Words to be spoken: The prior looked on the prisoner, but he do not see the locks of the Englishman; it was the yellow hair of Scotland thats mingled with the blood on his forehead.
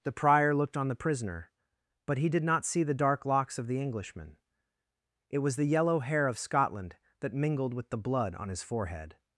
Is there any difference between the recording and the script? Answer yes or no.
yes